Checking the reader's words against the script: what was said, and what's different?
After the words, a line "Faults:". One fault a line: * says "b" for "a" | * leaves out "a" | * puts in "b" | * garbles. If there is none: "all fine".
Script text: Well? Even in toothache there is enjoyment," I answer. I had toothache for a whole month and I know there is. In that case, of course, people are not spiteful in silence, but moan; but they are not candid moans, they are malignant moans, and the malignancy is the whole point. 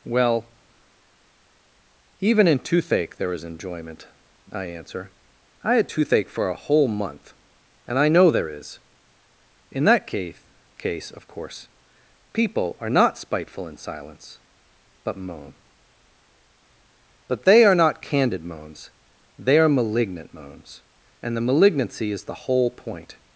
Well? Even in toothache there is enjoyment," I answer. I had toothache for a whole month and I know there is. In that case case, of course, people are not spiteful in silence, but moan; but they are not candid moans, they are malignant moans, and the malignancy is the whole point.
Faults:
* puts in "case"